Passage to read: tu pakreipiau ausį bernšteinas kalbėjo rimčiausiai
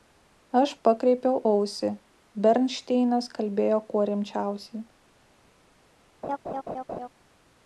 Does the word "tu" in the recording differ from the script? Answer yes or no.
yes